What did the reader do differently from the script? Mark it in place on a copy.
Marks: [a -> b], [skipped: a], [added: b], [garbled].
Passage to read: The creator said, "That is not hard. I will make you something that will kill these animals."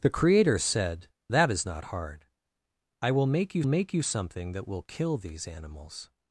The creator said, "That is not hard. I will make you [added: make you] something that will kill these animals."